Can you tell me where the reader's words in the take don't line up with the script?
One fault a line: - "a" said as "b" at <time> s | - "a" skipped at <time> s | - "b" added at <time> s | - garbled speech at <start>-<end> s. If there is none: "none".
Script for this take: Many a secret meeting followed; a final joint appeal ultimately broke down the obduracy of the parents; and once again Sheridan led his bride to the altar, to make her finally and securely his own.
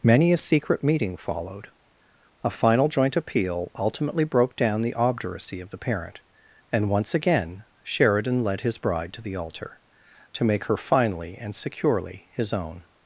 - "parents" said as "parent" at 5.8 s